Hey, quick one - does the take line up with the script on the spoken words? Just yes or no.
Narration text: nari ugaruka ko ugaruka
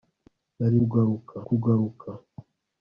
yes